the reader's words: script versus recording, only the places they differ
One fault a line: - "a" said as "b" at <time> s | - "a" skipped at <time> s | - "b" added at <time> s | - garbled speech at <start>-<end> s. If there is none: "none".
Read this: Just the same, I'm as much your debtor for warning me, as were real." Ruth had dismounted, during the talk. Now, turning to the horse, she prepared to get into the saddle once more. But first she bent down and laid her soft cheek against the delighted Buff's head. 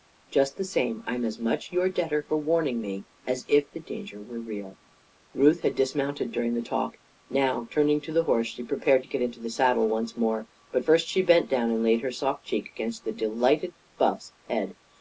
- "if the danger" added at 3.5 s